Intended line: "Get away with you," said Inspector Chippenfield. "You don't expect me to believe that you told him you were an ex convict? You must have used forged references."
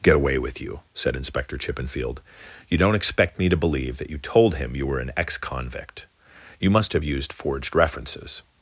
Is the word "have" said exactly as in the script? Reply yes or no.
yes